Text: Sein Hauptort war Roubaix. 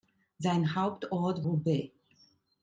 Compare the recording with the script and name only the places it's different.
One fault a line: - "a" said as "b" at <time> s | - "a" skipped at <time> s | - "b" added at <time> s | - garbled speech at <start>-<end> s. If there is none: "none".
- "war" skipped at 1.4 s